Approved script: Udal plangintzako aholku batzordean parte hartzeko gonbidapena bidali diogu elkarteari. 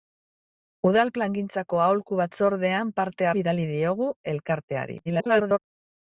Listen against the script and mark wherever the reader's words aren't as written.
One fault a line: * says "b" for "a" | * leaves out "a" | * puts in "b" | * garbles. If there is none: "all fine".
* leaves out "hartzeko gonbidapena"
* garbles